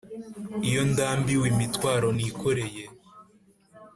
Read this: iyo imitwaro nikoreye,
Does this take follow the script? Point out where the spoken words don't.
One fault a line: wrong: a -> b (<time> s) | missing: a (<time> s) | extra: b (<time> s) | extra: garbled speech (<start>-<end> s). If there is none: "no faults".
extra: ndambiwe (0.9 s)